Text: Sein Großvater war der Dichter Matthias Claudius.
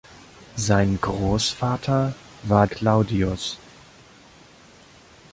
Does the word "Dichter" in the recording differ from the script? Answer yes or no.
yes